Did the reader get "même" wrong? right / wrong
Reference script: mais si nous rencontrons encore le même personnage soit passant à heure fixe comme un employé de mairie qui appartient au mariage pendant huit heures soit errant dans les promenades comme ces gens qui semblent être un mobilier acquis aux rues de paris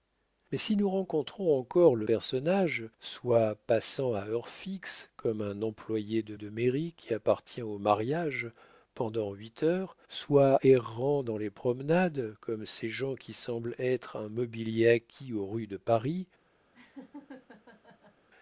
wrong